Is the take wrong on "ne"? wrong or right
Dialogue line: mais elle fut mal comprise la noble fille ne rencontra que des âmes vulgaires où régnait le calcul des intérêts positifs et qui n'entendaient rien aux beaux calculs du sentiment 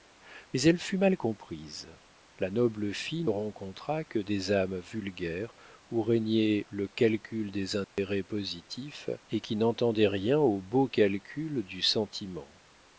wrong